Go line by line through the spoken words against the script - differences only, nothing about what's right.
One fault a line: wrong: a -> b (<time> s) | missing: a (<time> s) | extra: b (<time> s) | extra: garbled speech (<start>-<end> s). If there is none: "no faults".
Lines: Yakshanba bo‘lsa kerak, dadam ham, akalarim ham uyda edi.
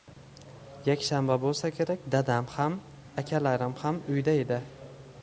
no faults